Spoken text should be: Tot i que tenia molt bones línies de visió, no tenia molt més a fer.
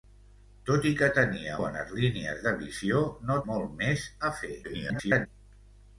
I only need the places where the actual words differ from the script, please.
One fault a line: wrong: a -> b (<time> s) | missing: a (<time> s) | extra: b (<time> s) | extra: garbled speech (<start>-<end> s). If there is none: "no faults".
missing: molt (1.6 s)
missing: tenia (3.4 s)
extra: garbled speech (4.6-5.3 s)